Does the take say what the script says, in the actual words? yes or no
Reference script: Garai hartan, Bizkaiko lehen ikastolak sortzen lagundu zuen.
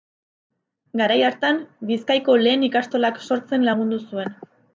yes